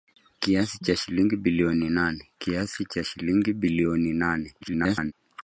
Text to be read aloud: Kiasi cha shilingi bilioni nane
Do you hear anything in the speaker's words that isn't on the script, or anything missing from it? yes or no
yes